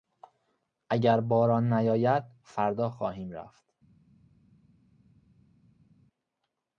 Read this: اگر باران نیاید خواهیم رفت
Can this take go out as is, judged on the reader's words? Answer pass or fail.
fail